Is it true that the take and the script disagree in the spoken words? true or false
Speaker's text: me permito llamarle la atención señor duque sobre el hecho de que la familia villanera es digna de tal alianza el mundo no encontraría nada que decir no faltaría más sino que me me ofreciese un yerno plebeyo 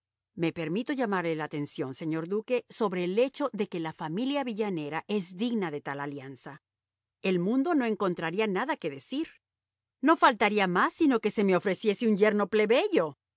true